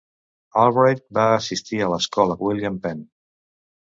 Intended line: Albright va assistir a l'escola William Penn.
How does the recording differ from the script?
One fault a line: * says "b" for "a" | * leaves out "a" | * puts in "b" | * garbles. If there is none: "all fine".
all fine